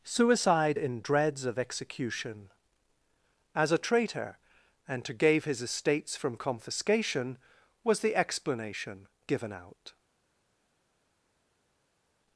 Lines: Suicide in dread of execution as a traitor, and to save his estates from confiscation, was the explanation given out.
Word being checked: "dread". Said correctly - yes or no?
no